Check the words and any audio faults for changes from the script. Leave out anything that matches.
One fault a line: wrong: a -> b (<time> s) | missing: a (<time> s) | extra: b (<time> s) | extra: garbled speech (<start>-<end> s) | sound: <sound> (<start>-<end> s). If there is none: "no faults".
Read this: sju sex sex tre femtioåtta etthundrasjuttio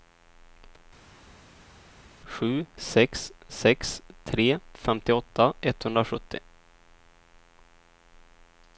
no faults